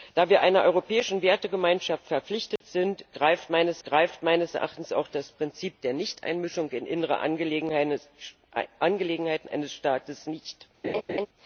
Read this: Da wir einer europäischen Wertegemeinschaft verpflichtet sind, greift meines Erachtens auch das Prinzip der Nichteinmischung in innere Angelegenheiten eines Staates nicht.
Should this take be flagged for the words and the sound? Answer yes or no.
yes